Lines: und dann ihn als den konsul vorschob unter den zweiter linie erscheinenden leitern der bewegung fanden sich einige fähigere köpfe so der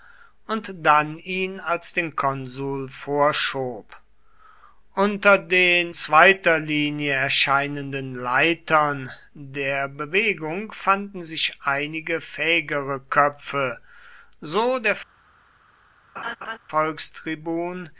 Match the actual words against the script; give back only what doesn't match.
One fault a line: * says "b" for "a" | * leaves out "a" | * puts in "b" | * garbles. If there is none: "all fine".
all fine